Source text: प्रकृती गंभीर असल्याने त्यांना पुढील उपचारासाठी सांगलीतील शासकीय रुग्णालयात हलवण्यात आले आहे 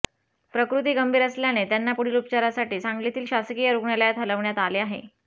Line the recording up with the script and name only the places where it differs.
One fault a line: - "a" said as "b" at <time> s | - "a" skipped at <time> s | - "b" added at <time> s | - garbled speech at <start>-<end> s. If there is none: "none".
none